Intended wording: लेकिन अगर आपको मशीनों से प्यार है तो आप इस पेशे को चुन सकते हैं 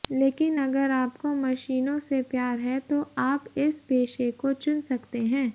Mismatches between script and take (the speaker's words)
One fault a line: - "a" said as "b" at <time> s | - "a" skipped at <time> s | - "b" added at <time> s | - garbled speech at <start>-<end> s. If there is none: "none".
none